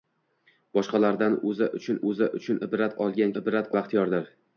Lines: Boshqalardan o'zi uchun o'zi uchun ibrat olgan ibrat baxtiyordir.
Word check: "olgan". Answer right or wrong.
right